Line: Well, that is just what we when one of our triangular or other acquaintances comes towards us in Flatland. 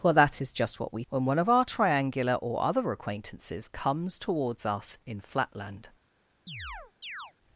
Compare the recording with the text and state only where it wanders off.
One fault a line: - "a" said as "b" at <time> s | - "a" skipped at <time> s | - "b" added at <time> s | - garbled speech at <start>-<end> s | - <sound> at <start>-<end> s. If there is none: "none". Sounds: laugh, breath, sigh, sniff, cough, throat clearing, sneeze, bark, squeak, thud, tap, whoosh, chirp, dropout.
- chirp at 6.5-7.3 s